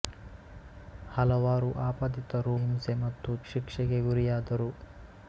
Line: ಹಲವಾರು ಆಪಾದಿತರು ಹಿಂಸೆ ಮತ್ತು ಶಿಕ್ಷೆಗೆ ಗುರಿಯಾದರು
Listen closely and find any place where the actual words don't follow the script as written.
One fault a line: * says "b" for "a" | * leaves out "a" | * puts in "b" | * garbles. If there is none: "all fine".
all fine